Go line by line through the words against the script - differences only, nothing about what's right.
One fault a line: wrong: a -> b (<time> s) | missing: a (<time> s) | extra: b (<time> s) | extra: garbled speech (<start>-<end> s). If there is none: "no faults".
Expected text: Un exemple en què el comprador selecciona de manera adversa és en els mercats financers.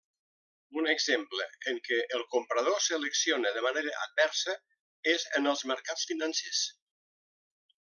no faults